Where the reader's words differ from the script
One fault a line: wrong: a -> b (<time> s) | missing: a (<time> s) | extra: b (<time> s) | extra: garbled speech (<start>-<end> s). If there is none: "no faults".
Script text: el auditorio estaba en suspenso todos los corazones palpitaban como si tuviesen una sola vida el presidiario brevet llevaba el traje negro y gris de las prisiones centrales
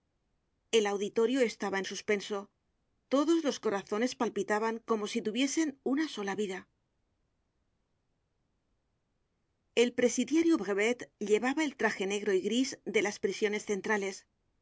no faults